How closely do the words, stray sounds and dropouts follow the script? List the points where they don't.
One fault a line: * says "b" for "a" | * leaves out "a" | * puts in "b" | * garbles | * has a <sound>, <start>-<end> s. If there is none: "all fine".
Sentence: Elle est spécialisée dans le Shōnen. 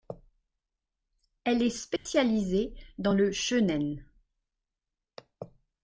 * has a dropout, 2.0-2.1 s